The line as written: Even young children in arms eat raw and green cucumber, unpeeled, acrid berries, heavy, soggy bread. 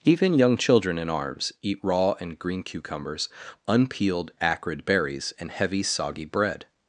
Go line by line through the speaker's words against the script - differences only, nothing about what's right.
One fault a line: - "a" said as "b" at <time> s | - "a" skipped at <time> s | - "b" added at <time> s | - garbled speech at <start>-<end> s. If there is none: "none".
- "cucumber" said as "cucumbers" at 2.6 s
- "and" added at 5.4 s